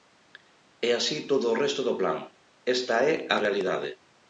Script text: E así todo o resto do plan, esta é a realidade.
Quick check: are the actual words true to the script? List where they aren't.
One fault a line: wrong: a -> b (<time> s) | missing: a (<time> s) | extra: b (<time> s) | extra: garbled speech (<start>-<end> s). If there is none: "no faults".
no faults